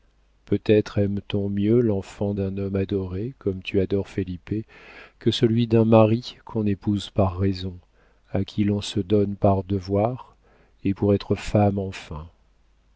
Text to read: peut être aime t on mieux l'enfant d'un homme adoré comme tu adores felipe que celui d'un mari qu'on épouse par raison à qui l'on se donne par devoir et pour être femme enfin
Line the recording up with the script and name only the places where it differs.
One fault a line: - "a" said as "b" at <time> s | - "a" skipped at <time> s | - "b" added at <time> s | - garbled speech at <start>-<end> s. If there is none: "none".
none